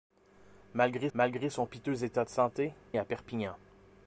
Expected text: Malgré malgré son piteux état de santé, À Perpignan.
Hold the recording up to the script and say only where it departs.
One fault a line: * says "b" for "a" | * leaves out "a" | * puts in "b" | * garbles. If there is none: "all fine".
all fine